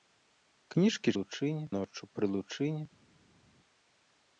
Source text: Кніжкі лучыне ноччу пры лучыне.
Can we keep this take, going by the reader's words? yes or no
yes